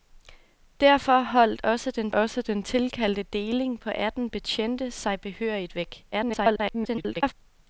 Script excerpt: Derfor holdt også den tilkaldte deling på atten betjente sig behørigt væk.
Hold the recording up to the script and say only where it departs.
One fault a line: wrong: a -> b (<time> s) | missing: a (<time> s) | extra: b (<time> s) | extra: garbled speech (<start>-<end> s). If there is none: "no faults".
extra: også den (2.1 s)
extra: garbled speech (6.1-7.3 s)